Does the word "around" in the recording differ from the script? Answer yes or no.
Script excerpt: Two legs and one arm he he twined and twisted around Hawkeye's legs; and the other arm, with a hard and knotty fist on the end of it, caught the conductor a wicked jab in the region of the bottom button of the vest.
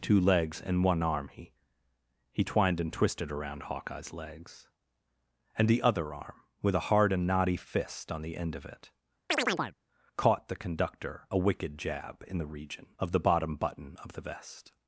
no